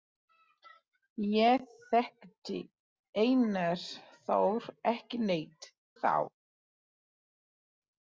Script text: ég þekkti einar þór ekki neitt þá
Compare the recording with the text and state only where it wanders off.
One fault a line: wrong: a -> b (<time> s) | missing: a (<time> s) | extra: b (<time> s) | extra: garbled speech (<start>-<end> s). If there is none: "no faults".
no faults